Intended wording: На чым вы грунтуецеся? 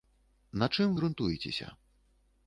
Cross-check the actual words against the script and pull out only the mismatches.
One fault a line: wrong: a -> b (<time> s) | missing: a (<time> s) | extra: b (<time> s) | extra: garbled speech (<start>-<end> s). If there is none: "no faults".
missing: вы (0.9 s)